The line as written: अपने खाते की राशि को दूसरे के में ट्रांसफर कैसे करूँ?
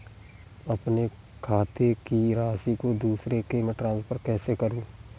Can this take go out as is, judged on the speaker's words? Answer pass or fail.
pass